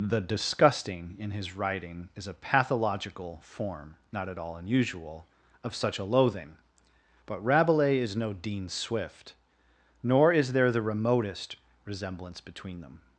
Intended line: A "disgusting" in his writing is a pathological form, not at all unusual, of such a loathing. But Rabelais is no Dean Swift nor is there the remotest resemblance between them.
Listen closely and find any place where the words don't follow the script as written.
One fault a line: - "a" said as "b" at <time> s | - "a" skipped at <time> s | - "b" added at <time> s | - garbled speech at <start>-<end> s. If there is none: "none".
- "A" said as "The" at 0.0 s